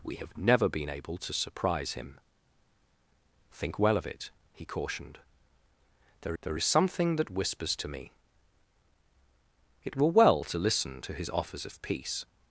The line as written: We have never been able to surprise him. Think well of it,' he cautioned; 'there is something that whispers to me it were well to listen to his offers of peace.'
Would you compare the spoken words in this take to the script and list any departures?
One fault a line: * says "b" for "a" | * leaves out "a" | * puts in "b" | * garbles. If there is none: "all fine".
* puts in "there"